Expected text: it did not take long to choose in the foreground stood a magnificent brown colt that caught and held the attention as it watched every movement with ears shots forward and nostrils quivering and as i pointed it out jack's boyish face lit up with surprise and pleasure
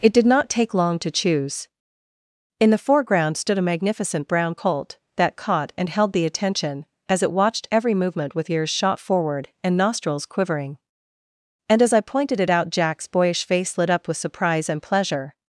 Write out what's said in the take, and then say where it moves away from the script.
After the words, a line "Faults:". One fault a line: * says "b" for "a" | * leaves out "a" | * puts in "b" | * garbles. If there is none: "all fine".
it did not take long to choose in the foreground stood a magnificent brown colt that caught and held the attention as it watched every movement with ears shot forward and nostrils quivering and as i pointed it out jack's boyish face lit up with surprise and pleasure
Faults:
* says "shot" for "shots"